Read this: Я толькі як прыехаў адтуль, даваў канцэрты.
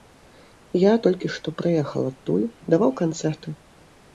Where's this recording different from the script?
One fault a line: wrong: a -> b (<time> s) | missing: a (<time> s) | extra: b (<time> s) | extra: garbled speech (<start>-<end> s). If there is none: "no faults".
wrong: як -> што (1.4 s)